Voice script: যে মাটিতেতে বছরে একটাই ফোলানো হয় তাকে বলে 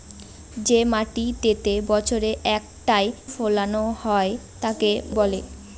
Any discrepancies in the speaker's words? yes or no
no